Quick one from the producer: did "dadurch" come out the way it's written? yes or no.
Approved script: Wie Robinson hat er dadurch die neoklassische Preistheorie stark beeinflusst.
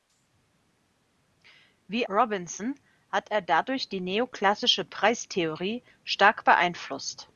yes